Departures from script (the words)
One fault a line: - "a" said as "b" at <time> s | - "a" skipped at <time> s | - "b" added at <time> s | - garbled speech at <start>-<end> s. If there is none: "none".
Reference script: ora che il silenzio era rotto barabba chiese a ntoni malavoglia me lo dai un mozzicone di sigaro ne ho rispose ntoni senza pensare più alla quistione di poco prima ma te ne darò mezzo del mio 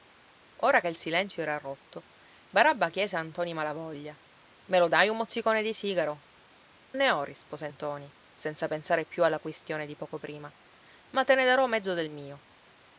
none